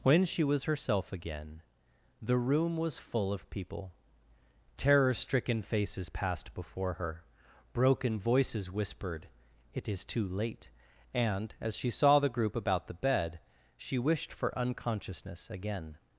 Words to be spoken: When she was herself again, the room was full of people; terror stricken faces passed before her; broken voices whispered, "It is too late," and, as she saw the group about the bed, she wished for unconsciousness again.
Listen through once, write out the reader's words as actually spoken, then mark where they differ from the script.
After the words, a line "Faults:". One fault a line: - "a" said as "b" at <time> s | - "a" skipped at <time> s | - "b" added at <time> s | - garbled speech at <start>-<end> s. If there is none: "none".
When she was herself again, the room was full of people; terror stricken faces passed before her; broken voices whispered, "It is too late," and, as she saw the group about the bed, she wished for unconsciousness again.
Faults:
none